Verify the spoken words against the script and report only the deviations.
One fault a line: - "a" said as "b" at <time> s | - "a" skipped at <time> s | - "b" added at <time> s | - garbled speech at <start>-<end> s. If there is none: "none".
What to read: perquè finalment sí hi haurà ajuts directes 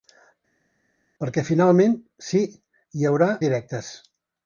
- "ajuts" skipped at 3.3 s